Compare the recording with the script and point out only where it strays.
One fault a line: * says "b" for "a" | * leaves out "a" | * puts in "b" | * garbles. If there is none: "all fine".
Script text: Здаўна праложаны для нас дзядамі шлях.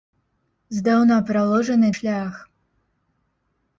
* leaves out "для нас дзядамі"